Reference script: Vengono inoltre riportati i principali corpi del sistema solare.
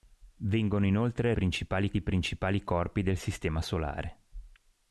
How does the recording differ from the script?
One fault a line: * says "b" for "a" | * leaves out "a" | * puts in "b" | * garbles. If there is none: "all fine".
* says "principali" for "riportati"